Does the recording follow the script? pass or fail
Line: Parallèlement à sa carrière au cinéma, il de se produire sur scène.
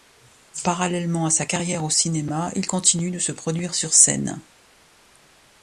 fail